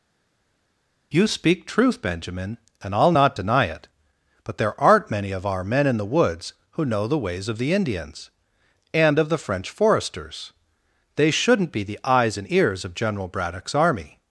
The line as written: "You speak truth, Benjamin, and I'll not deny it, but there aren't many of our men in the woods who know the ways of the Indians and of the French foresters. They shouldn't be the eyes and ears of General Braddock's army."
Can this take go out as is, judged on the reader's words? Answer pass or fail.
pass